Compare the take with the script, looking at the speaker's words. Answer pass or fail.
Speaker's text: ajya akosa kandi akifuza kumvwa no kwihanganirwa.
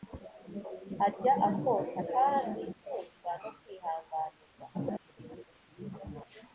fail